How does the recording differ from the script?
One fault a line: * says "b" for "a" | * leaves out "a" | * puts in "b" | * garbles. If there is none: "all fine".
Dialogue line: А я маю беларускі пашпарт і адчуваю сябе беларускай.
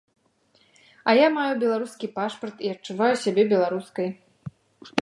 all fine